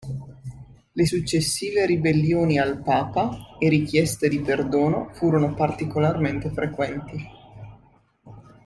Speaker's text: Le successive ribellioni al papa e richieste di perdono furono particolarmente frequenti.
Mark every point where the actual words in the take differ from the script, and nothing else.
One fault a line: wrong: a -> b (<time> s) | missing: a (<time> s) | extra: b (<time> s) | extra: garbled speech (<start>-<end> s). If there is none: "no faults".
no faults